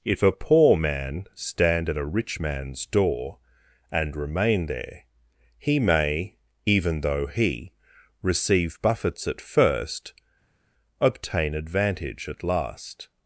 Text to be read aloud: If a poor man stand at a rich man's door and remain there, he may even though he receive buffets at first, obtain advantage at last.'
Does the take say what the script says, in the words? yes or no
yes